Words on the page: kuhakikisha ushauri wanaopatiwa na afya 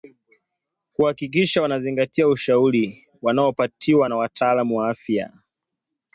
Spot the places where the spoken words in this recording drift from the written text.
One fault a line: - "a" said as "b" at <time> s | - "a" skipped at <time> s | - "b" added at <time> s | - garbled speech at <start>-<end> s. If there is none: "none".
- "wanazingatia" added at 1.6 s
- "wataalamu wa" added at 4.2 s